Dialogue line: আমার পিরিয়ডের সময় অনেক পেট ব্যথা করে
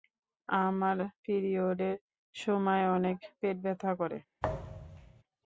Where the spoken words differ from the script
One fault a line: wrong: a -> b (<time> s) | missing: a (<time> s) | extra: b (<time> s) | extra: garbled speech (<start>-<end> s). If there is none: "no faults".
no faults